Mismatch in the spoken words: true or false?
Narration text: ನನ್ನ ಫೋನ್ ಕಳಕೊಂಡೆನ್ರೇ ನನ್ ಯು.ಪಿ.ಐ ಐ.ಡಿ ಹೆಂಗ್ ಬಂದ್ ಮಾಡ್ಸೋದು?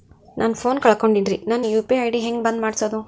false